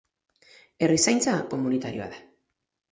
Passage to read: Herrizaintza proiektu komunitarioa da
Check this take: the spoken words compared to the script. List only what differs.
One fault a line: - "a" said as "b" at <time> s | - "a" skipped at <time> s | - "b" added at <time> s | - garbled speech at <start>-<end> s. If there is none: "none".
- "proiektu" skipped at 1.4 s